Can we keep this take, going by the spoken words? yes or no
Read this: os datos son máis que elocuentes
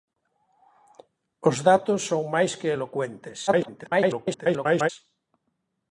no